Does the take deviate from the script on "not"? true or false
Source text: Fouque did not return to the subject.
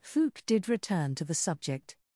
true